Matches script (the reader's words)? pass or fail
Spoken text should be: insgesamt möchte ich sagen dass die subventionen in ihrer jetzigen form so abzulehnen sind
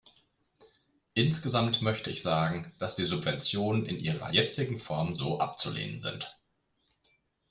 pass